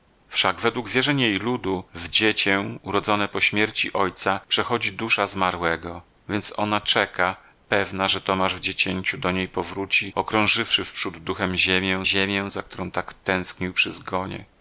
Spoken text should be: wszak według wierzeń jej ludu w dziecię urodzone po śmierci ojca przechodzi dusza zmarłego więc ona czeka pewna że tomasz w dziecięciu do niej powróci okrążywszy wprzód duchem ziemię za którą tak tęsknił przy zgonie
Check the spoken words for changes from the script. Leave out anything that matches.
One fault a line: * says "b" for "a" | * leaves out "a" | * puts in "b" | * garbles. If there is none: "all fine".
* puts in "ziemię"